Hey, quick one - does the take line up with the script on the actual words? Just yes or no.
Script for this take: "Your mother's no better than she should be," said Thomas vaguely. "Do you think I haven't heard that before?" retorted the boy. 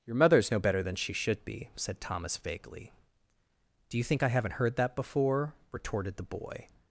yes